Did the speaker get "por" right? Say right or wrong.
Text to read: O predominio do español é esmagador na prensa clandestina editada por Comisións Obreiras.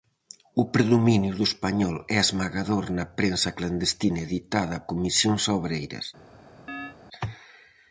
wrong